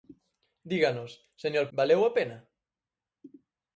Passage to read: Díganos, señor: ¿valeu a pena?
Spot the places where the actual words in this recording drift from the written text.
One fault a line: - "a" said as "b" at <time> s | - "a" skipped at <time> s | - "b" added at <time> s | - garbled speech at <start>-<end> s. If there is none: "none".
none